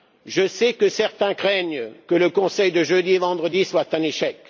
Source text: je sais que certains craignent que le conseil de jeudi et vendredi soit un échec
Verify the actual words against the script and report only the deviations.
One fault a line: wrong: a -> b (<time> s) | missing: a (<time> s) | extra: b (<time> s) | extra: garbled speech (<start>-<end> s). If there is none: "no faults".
no faults